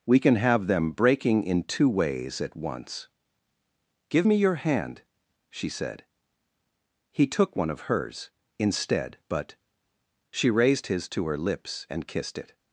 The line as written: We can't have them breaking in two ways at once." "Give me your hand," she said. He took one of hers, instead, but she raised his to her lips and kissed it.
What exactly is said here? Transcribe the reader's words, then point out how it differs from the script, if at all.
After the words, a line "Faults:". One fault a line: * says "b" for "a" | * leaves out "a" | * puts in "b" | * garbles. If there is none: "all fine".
We can have them breaking in two ways at once." "Give me your hand," she said. He took one of hers, instead, but she raised his to her lips and kissed it.
Faults:
* says "can" for "can't"